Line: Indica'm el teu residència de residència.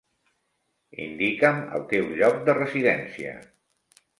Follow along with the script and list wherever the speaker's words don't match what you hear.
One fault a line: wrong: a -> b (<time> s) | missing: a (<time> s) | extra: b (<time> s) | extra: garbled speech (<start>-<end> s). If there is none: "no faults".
wrong: residència -> lloc (2.2 s)